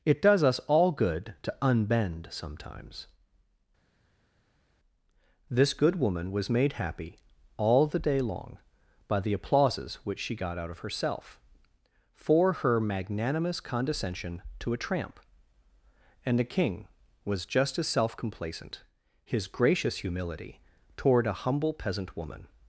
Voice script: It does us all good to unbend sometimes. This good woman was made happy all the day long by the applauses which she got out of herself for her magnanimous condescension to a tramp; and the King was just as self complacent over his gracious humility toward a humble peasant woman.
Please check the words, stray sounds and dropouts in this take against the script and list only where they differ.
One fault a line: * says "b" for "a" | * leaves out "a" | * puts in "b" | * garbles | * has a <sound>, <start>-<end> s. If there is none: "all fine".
* leaves out "over"